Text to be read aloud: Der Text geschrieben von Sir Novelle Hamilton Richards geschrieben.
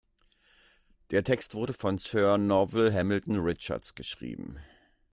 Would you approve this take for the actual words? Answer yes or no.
no